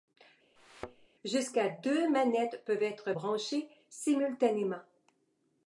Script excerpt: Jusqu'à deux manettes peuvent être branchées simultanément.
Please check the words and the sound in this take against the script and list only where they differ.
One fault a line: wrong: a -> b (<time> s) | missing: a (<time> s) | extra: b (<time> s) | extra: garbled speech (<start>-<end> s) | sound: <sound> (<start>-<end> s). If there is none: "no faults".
sound: thud (0.6-1.1 s)